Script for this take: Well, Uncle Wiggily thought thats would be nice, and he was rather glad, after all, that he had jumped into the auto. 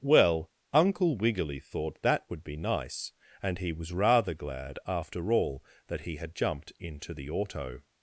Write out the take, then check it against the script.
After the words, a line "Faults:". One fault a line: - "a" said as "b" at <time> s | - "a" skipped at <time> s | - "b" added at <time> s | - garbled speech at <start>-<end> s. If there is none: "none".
Well, Uncle Wiggily thought that would be nice, and he was rather glad, after all, that he had jumped into the auto.
Faults:
- "thats" said as "that" at 2.0 s